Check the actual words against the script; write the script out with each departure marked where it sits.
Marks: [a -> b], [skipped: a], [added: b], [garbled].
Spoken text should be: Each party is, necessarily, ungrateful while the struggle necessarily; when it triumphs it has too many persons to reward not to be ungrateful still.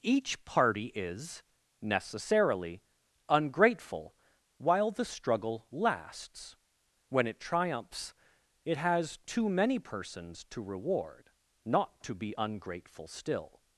Each party is, necessarily, ungrateful while the struggle [necessarily; -> lasts] when it triumphs it has too many persons to reward not to be ungrateful still.